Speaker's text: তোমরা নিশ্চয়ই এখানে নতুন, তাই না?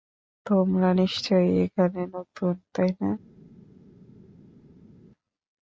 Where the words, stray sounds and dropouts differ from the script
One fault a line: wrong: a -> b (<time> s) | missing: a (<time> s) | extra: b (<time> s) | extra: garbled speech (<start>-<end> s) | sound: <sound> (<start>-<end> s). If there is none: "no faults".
no faults